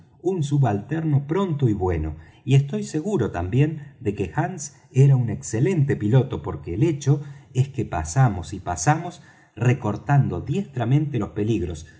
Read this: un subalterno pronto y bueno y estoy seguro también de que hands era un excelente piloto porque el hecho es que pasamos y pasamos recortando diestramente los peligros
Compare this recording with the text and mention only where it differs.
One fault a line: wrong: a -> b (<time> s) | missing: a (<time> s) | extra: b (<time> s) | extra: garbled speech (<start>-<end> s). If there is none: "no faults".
no faults